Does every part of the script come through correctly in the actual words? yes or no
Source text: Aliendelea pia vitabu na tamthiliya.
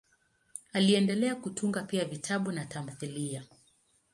no